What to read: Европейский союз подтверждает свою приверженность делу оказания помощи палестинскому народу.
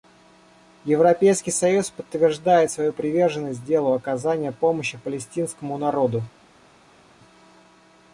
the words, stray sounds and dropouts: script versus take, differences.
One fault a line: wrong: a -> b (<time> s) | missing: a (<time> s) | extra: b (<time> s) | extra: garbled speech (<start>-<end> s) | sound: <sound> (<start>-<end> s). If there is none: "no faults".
no faults